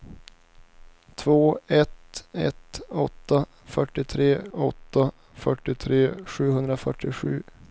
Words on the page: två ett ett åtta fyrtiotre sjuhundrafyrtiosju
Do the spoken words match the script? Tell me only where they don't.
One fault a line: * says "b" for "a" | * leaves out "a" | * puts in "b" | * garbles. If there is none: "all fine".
* puts in "åtta fyrtiotre"